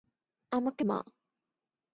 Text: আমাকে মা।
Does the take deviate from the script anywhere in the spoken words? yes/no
no